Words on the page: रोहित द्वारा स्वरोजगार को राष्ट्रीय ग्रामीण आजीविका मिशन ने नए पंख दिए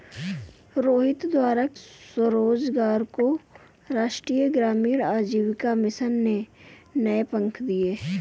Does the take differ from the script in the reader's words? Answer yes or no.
no